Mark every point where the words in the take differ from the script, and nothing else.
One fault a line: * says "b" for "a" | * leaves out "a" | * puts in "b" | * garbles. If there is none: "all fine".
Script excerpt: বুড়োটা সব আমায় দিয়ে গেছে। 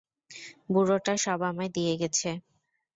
all fine